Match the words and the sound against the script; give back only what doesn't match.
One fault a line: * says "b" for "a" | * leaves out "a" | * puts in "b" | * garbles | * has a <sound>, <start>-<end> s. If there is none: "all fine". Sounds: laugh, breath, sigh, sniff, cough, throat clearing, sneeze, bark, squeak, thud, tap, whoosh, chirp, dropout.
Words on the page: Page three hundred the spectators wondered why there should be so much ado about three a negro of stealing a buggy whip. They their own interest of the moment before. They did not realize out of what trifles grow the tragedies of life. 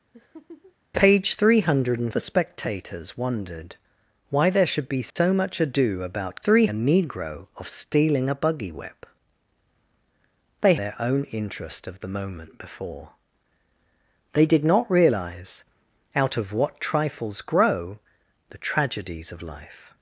* has a laugh, 0.1-0.8 s
* has a dropout, 5.1-5.2 s